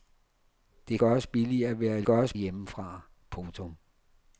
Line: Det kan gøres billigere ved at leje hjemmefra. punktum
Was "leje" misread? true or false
true